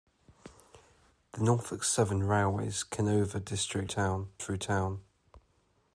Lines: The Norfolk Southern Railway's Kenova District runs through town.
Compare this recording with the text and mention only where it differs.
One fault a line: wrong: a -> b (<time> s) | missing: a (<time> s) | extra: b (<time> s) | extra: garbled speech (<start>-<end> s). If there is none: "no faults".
wrong: runs -> town (3.8 s)